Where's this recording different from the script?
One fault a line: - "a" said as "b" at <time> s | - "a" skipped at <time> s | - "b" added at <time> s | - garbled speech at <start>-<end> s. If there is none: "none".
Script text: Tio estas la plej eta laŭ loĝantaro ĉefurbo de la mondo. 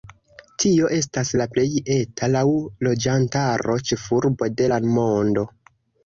none